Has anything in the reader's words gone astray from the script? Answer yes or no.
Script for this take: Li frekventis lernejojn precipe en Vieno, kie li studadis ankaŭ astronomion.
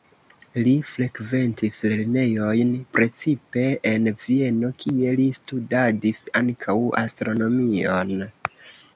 no